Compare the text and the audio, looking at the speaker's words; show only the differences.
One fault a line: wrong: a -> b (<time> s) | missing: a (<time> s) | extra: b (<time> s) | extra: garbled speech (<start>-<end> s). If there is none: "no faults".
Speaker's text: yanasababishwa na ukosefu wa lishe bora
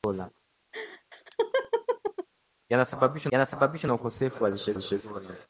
extra: yanasababishwa (3.3 s)
extra: lishe (4.7 s)